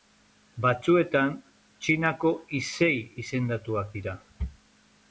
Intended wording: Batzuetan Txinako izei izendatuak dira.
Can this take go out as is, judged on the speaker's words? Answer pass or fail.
pass